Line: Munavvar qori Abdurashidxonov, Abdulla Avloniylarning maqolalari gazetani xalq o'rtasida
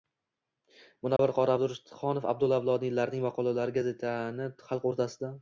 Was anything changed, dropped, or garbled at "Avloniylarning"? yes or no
no